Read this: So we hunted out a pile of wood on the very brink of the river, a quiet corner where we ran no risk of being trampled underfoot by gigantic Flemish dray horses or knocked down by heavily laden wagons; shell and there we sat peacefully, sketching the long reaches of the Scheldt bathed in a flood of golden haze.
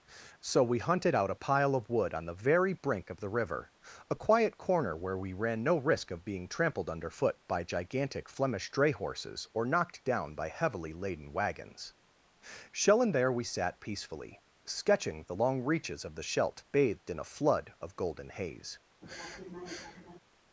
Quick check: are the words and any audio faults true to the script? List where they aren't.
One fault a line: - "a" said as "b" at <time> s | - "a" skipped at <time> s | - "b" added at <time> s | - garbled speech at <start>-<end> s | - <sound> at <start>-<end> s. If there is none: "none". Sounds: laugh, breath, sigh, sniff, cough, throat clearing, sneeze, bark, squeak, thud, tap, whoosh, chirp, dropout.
- sniff at 19.0-20.2 s